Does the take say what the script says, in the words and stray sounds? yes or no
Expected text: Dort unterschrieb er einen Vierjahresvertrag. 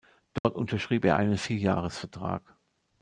no